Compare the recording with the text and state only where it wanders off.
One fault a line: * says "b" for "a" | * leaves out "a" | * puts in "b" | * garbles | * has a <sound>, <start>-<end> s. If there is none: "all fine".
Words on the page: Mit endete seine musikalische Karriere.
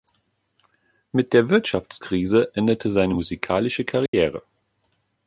* puts in "der Wirtschaftskrise"
* has a dropout, 4.1-4.1 s